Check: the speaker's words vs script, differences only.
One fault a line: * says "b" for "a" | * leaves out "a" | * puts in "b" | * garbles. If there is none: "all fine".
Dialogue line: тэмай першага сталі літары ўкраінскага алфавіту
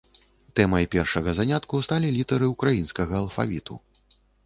* puts in "занятку"